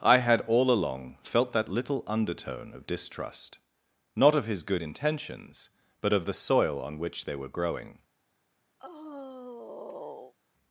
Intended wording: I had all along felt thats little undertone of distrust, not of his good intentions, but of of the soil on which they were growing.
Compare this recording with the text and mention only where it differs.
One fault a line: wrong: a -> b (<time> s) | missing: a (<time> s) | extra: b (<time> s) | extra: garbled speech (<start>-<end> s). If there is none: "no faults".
wrong: thats -> that (1.5 s)
missing: of (6.3 s)